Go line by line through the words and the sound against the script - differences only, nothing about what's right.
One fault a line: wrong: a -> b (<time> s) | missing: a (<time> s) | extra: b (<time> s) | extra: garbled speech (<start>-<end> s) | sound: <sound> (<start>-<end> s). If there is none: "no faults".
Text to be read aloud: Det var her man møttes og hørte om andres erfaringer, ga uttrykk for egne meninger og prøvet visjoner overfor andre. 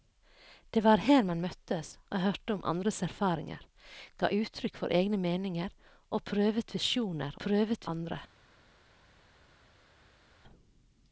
wrong: overfor -> prøvet (7.5 s)